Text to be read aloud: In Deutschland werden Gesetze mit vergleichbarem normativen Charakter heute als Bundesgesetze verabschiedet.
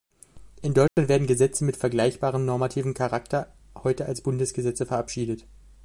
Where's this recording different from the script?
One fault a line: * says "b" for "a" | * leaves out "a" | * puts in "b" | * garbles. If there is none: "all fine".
all fine